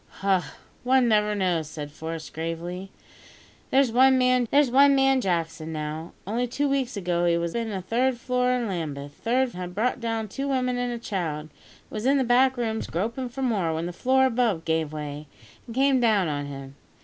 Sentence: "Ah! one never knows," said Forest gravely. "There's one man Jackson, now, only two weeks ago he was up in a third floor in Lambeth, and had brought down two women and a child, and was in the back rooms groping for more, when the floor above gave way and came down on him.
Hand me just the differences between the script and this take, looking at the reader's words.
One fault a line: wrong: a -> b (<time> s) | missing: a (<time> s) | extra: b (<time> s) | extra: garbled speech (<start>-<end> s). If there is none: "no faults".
extra: there's one man (4.5 s)
missing: up (7.6 s)
wrong: and -> third (9.2 s)